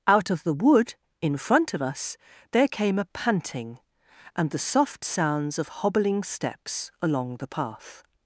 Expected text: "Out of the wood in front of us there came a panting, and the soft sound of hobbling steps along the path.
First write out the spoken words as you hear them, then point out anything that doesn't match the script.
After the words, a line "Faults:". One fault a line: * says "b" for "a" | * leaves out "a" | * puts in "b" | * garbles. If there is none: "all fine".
"Out of the wood in front of us there came a panting, and the soft sounds of hobbling steps along the path.
Faults:
* says "sounds" for "sound"